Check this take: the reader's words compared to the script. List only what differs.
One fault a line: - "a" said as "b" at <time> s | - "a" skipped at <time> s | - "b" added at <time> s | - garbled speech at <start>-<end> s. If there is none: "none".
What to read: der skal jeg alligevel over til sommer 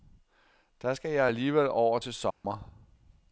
none